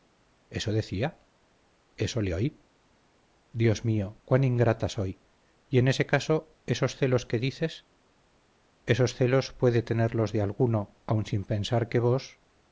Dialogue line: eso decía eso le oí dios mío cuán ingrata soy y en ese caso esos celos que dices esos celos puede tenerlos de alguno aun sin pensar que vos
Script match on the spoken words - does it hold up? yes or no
yes